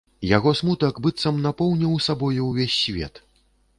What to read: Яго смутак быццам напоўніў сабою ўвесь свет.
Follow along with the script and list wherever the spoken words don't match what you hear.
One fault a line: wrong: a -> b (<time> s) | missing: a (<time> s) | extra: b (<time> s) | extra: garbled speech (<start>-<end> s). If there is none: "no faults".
no faults